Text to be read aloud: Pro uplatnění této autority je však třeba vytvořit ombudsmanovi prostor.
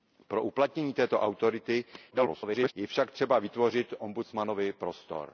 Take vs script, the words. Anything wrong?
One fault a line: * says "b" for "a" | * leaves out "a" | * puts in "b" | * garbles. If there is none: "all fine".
* garbles